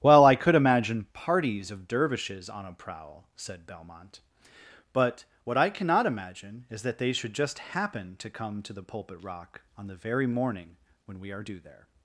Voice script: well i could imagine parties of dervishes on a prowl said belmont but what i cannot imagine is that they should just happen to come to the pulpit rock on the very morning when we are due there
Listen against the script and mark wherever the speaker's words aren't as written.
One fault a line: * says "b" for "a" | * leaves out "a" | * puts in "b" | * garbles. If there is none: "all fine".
all fine